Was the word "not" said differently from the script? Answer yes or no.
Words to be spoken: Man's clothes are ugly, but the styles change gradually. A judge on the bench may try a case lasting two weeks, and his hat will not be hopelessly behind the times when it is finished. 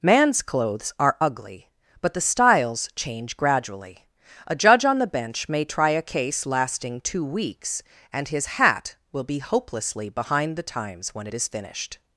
yes